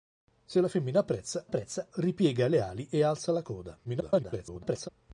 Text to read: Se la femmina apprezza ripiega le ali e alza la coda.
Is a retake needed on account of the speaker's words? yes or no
yes